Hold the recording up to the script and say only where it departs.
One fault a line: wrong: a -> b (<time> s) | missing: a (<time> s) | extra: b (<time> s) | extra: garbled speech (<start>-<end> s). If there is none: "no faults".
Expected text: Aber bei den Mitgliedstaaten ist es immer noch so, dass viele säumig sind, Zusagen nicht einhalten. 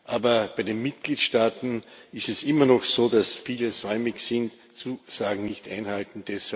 no faults